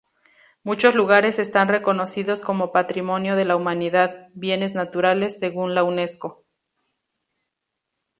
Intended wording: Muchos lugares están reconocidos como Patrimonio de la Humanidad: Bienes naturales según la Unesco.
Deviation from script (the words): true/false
false